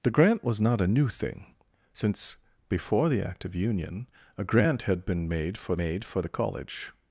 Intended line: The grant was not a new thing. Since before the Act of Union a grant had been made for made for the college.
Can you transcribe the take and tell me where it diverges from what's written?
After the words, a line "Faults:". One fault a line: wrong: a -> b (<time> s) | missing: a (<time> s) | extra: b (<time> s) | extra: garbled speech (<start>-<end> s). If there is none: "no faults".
The grant was not a new thing. Since before the Act of Union a grant had been made for made for the college.
Faults:
no faults